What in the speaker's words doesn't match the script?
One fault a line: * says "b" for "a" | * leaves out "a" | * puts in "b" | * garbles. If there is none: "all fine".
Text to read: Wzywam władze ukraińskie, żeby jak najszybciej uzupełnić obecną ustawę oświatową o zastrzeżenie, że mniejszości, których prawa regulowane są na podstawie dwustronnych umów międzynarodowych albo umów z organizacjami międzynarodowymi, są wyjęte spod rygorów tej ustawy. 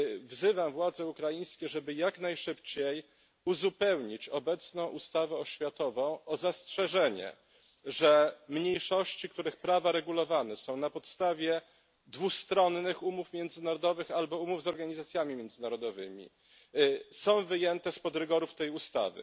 all fine